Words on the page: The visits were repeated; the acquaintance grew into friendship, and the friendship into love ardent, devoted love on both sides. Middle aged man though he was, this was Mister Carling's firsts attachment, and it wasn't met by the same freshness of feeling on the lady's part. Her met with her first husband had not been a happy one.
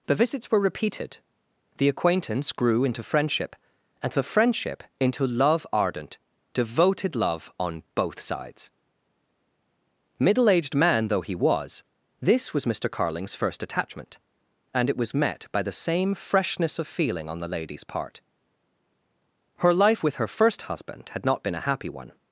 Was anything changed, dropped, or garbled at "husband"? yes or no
no